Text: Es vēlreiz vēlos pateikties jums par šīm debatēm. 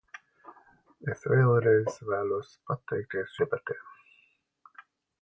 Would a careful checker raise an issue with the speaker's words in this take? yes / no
yes